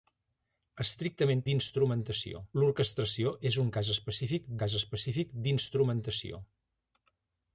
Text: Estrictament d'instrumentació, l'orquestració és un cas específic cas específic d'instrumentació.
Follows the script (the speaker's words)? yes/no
yes